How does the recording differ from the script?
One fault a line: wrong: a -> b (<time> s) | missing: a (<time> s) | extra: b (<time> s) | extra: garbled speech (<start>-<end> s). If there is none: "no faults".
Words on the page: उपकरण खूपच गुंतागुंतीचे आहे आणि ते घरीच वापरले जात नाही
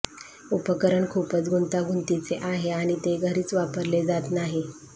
no faults